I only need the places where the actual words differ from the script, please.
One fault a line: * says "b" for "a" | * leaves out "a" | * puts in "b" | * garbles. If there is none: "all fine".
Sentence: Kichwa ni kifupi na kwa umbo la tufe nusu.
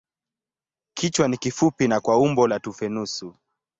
all fine